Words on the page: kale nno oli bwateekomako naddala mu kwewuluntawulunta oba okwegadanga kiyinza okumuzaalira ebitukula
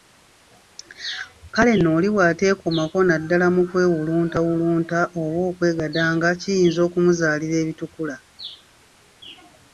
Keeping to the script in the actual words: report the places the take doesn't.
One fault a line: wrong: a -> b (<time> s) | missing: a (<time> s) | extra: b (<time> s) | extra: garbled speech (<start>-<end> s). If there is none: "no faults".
no faults